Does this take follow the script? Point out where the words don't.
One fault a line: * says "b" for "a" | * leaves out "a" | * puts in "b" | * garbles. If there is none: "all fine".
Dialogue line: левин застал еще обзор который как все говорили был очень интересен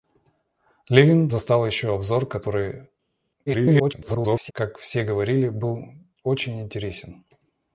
* garbles